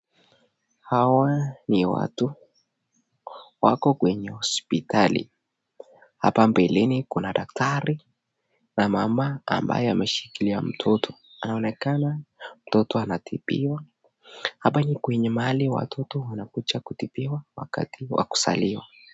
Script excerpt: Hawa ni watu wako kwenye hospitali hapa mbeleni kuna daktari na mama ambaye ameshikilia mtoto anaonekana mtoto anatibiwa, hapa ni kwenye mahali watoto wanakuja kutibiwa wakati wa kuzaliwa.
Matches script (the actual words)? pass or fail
pass